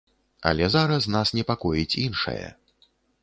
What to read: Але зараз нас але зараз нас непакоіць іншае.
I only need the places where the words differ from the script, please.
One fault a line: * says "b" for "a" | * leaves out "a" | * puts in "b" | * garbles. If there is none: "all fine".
* leaves out "але зараз нас"